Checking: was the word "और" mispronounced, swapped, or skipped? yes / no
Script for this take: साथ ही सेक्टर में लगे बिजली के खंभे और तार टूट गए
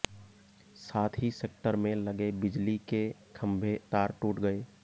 yes